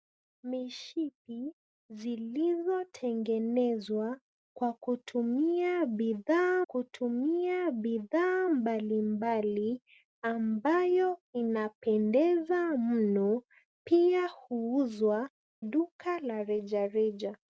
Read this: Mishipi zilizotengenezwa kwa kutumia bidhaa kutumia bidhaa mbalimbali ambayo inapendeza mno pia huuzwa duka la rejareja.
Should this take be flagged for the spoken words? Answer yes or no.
no